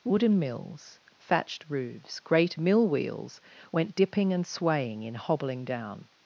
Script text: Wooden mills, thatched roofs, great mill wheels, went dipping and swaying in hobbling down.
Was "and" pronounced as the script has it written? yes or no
yes